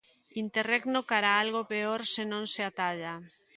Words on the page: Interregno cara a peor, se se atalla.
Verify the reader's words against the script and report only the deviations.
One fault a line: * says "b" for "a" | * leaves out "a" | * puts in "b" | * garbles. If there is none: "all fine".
* puts in "algo"
* puts in "non"